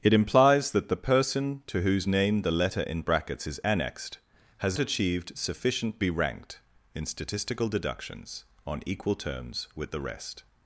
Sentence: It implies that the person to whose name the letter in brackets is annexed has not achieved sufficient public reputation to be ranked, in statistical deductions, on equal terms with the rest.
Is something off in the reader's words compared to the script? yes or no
yes